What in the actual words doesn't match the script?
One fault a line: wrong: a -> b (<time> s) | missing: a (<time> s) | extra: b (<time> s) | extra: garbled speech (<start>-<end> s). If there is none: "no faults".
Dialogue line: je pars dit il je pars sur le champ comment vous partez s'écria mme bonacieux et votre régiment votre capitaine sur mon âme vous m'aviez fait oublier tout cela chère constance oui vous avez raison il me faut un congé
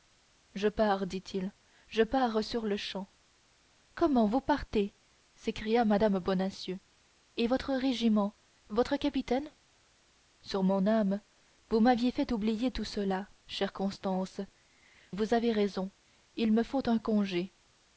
missing: oui (14.4 s)